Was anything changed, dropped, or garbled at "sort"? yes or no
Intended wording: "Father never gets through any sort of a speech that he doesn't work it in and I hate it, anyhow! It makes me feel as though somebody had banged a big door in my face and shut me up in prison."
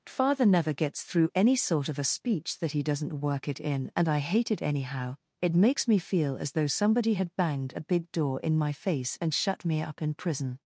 no